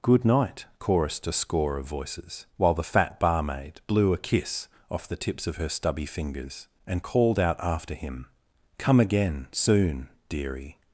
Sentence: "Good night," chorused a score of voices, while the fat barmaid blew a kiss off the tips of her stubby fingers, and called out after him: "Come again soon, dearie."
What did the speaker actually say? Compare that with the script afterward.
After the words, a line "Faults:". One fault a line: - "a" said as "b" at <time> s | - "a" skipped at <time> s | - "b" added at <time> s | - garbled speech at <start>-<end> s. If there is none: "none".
"Good night," chorused a score of voices, while the fat barmaid blew a kiss off the tips of her stubby fingers, and called out after him: "Come again soon, dearie."
Faults:
none